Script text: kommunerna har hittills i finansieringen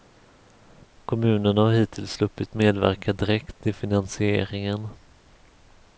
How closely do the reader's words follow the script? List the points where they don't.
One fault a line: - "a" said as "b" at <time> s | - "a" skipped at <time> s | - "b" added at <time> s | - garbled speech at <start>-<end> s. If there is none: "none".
- "sluppit medverka direkt" added at 2.1 s